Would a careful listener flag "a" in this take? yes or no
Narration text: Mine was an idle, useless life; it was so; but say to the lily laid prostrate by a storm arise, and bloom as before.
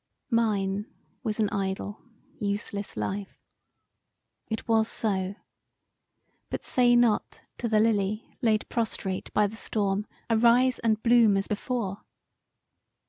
yes